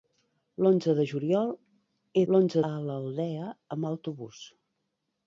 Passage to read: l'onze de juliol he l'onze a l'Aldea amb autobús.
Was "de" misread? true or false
false